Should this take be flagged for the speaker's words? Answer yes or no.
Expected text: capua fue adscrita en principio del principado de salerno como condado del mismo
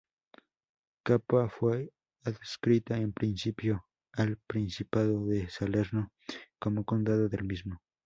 yes